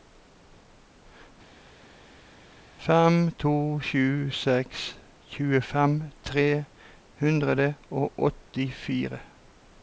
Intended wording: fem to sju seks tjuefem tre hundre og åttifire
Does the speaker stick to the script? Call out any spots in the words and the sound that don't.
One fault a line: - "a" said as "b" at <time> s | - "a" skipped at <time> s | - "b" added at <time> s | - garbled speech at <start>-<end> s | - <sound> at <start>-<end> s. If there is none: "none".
none